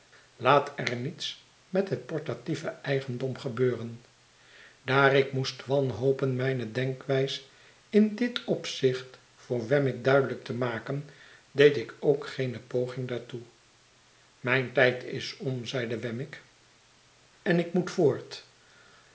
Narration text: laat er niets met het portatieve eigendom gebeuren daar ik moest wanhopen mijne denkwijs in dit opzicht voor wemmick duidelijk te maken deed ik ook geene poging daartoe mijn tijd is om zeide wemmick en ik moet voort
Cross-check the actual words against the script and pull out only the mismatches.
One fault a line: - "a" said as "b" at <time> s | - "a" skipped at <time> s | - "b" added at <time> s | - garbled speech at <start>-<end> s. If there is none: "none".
none